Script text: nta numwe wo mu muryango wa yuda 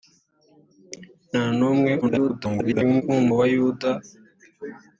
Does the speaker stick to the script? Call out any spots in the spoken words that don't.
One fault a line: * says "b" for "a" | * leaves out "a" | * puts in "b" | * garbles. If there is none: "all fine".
* garbles
* leaves out "muryango"